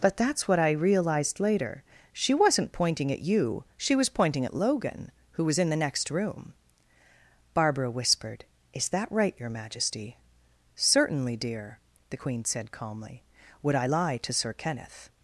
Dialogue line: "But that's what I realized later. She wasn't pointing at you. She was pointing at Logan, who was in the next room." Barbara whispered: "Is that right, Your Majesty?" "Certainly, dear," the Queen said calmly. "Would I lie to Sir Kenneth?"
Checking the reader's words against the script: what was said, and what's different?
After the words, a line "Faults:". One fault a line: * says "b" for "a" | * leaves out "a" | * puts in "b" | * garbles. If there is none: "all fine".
"But that's what I realized later. She wasn't pointing at you. She was pointing at Logan, who was in the next room." Barbara whispered: "Is that right, Your Majesty?" "Certainly, dear," the Queen said calmly. "Would I lie to Sir Kenneth?"
Faults:
all fine